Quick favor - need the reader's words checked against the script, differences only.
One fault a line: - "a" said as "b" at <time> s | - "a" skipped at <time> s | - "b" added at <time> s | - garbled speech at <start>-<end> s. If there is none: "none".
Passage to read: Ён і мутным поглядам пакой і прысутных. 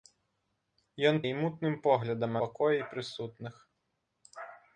none